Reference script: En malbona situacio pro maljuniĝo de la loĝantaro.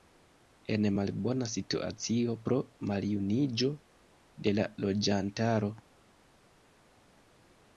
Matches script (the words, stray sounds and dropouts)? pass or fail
pass